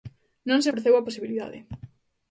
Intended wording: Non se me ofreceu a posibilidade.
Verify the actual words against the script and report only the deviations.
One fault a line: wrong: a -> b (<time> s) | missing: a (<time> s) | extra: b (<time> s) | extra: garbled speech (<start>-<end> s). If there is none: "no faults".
missing: me (0.7 s)